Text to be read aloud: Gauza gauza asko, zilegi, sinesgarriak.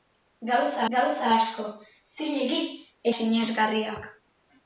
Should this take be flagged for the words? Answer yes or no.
no